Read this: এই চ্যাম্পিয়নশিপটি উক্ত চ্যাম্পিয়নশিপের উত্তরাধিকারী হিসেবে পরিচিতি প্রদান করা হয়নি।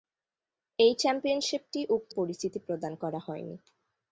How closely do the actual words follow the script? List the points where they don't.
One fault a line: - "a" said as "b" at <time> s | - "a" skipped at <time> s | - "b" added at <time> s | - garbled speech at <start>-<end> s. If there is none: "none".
- "চ্যাম্পিয়নশিপের উত্তরাধিকারী হিসেবে" skipped at 2.1 s